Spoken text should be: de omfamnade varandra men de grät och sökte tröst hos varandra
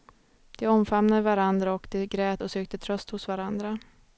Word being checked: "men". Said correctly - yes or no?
no